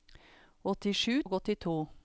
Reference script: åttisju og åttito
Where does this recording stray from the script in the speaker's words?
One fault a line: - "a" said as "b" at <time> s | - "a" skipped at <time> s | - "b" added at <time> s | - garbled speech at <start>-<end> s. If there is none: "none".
none